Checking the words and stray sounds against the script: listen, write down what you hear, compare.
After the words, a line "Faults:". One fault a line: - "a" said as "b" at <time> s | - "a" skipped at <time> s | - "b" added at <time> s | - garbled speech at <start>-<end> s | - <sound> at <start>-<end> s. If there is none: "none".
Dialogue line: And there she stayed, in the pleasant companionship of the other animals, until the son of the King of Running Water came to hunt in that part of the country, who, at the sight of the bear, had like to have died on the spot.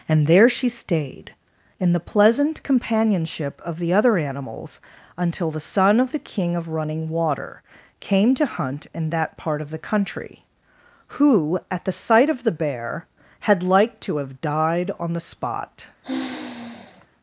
And there she stayed, in the pleasant companionship of the other animals, until the son of the King of Running Water came to hunt in that part of the country, who, at the sight of the bear, had like to have died on the spot.
Faults:
- sigh at 16.0-17.1 s